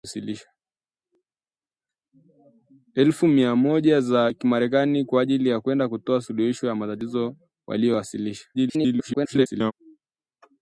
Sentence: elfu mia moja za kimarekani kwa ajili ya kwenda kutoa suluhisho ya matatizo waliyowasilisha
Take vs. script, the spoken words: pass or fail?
fail